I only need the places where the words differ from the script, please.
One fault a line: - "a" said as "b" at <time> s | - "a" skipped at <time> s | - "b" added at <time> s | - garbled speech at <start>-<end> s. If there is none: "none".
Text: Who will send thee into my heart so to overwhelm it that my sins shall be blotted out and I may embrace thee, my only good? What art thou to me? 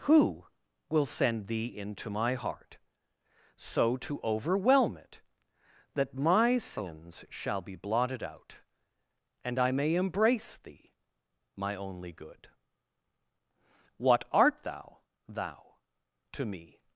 - "thou" added at 15.3 s